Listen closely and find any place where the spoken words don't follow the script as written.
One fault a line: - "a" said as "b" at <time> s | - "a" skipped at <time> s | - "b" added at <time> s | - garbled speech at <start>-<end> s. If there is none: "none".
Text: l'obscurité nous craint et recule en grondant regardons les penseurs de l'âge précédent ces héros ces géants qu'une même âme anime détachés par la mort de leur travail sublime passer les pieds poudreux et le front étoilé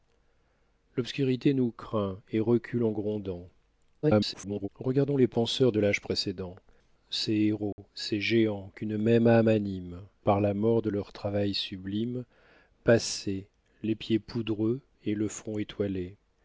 - garbled speech at 4.0-4.7 s
- "détachés" skipped at 10.0 s